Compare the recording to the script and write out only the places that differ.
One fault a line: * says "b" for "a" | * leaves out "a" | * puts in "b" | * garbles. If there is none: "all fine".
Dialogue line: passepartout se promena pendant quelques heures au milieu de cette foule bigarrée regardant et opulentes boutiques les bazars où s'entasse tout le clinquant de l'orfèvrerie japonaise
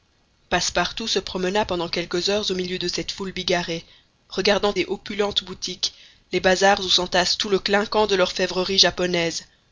all fine